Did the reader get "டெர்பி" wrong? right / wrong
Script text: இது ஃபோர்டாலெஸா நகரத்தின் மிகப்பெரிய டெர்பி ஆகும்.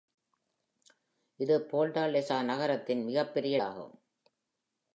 wrong